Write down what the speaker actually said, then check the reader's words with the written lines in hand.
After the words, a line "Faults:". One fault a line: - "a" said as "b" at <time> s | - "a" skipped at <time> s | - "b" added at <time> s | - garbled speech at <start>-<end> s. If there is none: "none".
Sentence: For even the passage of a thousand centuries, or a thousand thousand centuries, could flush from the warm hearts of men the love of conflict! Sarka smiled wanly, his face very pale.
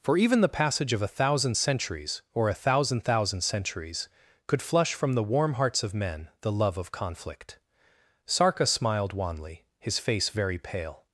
For even the passage of a thousand centuries, or a thousand thousand centuries, could flush from the warm hearts of men the love of conflict! Sarka smiled wanly, his face very pale.
Faults:
none